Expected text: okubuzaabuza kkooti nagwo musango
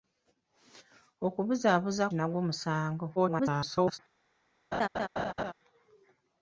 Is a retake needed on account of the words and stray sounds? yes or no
yes